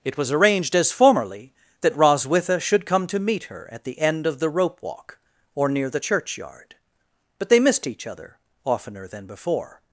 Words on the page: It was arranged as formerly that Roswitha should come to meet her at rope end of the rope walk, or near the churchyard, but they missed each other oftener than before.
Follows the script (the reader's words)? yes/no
no